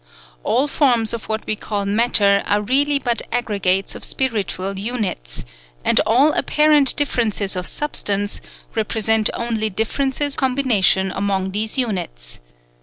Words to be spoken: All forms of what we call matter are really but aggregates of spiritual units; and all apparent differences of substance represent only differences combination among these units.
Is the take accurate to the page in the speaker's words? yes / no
yes